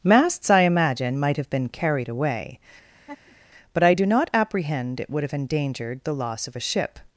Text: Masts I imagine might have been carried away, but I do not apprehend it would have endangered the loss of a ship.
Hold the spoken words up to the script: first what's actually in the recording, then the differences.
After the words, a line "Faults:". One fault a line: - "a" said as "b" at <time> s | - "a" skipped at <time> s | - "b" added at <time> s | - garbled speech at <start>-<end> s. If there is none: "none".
Masts I imagine might have been carried away, but I do not apprehend it would have endangered the loss of a ship.
Faults:
none